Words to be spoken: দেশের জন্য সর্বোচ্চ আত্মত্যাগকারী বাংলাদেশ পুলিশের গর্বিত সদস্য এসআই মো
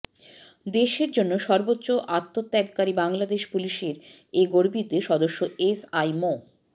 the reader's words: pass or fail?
fail